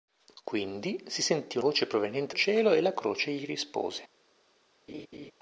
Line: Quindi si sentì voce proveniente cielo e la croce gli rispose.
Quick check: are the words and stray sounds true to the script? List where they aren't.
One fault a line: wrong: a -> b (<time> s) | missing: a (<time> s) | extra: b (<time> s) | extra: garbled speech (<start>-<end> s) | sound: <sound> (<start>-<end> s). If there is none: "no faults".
sound: laugh (4.9-5.3 s)